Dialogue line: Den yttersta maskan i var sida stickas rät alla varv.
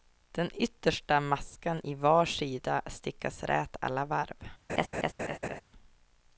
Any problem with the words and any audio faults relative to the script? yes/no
yes